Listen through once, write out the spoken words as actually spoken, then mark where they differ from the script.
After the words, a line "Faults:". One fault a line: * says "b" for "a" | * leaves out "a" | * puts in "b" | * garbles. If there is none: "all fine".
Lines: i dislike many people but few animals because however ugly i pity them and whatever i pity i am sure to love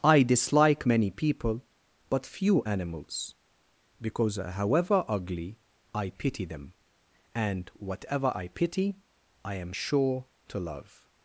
i dislike many people but few animals because however ugly i pity them and whatever i pity i am sure to love
Faults:
all fine